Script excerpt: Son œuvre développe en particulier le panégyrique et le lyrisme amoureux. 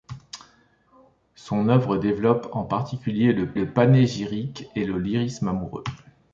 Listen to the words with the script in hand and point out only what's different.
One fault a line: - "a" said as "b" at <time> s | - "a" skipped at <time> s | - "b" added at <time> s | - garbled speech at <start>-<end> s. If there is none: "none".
- "le" added at 3.5 s